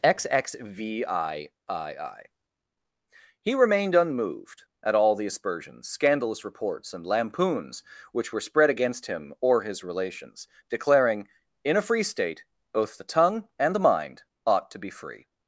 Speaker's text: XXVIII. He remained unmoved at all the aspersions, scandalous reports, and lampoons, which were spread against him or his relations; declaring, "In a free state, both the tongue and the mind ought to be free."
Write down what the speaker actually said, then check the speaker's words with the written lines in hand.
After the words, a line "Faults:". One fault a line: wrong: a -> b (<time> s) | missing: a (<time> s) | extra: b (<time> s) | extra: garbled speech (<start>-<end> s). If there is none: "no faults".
XXVIII. He remained unmoved at all the aspersions, scandalous reports, and lampoons, which were spread against him or his relations; declaring, "In a free state, both the tongue and the mind ought to be free."
Faults:
no faults